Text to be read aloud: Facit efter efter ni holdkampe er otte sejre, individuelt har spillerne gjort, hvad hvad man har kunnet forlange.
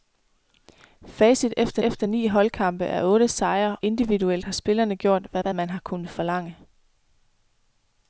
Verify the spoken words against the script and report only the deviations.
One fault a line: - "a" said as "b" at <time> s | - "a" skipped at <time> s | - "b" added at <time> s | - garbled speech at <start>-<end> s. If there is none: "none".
none